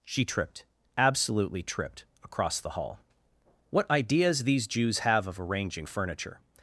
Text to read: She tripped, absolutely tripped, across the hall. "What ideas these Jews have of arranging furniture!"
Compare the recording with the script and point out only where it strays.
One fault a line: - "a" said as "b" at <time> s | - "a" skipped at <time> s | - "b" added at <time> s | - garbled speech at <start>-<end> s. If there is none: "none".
none